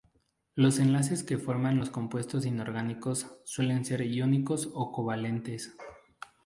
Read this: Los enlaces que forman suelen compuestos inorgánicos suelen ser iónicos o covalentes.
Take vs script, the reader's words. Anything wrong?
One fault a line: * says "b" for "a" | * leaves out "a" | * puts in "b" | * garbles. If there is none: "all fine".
* says "los" for "suelen"